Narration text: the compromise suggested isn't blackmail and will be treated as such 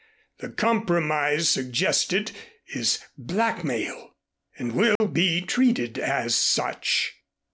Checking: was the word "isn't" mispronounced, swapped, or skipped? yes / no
yes